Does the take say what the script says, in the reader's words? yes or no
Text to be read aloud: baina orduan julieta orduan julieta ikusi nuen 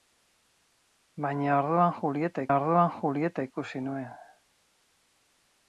yes